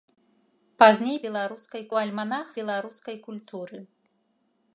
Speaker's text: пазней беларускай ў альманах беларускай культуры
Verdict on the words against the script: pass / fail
pass